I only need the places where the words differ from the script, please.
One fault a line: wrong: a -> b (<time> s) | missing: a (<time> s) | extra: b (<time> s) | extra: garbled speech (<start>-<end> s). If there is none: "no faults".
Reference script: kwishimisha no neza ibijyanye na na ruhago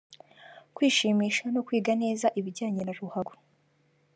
extra: kwiga (1.7 s)
missing: na (2.9 s)